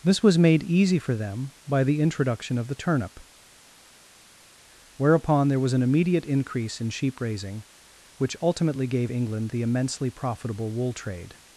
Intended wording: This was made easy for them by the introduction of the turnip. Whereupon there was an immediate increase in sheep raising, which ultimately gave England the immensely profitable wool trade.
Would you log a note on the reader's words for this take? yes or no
no